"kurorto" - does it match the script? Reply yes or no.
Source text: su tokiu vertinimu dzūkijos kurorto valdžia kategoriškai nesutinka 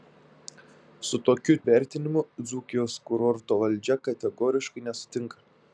yes